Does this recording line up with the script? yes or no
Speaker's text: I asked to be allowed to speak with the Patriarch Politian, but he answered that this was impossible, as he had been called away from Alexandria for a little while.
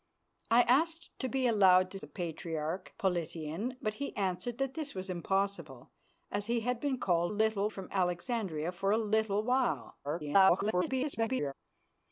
no